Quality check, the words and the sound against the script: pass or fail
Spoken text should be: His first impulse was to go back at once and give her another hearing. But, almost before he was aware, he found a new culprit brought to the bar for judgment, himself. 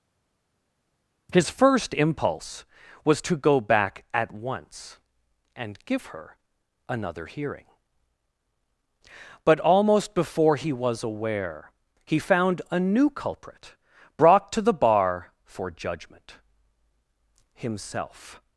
pass